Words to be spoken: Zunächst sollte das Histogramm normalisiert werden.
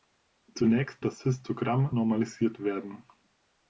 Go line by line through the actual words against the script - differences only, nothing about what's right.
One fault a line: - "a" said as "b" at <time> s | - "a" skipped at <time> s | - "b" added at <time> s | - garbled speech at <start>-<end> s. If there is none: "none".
- "sollte" skipped at 1.1 s